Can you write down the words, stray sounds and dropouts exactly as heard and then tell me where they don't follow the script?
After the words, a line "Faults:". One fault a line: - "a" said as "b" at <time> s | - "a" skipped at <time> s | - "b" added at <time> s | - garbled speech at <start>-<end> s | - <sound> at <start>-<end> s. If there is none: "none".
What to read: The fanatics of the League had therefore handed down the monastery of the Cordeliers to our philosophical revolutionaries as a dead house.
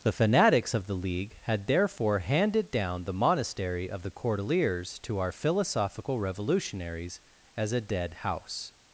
The fanatics of the League had therefore handed down the monastery of the Cordeliers to our philosophical revolutionaries as a dead house.
Faults:
none